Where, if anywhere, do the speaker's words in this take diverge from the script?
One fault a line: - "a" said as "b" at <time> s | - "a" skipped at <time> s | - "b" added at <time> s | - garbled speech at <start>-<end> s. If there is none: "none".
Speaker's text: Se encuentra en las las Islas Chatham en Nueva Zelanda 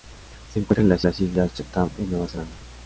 none